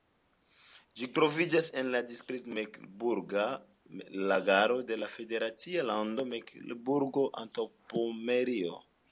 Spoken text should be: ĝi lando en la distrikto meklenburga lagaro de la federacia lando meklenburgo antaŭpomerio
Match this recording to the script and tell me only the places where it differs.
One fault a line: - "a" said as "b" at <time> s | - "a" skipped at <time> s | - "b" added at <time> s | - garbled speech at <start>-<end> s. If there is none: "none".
- "lando" said as "troviĝas" at 1.2 s